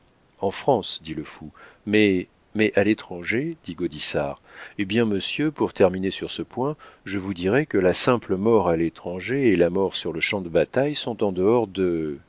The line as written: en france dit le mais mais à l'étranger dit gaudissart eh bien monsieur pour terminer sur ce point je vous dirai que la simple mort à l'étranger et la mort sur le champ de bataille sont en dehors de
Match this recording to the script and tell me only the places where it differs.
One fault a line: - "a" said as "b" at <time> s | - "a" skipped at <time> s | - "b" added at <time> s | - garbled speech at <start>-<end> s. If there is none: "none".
- "fou" added at 1.2 s